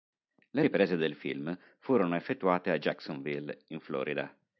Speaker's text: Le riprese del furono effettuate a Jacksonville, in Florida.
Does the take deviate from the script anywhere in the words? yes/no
yes